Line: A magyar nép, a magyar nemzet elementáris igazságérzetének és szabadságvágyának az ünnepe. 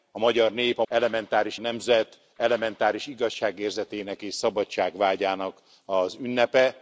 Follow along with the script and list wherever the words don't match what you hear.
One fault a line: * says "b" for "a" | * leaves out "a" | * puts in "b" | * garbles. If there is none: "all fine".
* says "elementáris" for "magyar"